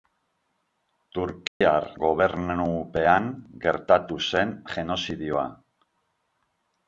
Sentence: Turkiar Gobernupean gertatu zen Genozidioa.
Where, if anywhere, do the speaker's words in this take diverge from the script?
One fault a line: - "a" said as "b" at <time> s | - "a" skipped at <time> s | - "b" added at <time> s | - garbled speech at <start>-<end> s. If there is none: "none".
none